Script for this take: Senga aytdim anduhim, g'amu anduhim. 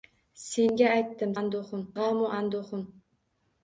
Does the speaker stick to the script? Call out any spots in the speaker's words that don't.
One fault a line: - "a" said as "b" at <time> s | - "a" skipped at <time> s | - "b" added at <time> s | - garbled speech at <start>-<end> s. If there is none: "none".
none